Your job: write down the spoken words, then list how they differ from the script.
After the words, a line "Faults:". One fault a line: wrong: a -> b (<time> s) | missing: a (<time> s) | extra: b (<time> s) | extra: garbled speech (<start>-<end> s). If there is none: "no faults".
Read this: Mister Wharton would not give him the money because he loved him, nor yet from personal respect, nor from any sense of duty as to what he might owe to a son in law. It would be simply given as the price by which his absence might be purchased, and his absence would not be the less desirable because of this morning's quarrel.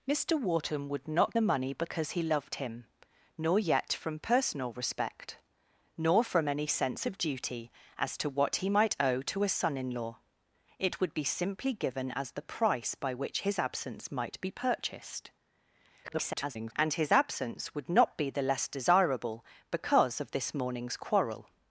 Mister Wharton would not the money because he loved him, nor yet from personal respect, nor from any sense of duty as to what he might owe to a son in law. It would be simply given as the price by which his absence might be purchased, [garbled] and his absence would not be the less desirable because of this morning's quarrel.
Faults:
missing: give him (1.4 s)
extra: garbled speech (16.0-16.7 s)